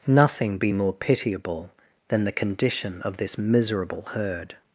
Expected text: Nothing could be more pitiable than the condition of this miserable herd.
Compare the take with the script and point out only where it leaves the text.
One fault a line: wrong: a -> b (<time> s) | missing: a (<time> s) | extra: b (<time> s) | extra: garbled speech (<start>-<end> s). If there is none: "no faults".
missing: could (0.6 s)